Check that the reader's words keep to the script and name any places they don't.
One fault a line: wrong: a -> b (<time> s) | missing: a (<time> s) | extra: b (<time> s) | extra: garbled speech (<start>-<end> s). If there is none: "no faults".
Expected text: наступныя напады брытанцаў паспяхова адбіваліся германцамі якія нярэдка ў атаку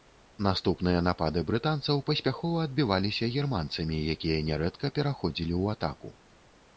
extra: пераходзілі (5.0 s)